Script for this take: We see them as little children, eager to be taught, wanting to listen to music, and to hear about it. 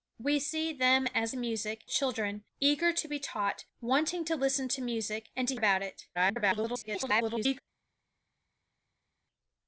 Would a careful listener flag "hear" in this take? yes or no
yes